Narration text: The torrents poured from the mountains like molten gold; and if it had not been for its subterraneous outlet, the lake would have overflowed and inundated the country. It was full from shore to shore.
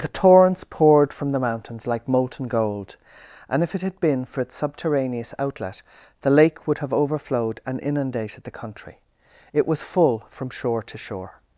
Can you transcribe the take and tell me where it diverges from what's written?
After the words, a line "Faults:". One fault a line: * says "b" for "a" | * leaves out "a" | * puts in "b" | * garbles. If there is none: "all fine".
The torrents poured from the mountains like molten gold; and if it had been for its subterraneous outlet, the lake would have overflowed and inundated the country. It was full from shore to shore.
Faults:
* leaves out "not"